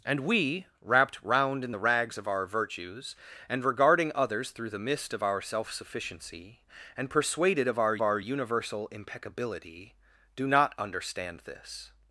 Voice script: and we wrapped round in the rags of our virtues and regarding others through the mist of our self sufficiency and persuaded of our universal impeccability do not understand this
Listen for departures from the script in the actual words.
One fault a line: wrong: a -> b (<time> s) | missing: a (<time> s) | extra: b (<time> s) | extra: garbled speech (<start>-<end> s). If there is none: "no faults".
extra: our (8.0 s)